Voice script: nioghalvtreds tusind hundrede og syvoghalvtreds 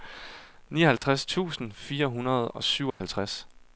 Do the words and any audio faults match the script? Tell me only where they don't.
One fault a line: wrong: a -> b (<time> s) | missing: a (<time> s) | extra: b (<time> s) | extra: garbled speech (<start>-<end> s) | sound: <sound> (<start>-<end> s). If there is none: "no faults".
sound: dropout (1.0-1.0 s)
extra: fire (1.7 s)
sound: dropout (2.9-3.0 s)